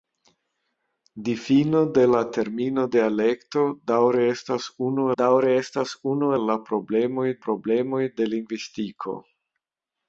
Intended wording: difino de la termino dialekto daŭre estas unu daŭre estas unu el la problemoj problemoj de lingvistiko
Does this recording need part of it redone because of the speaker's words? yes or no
no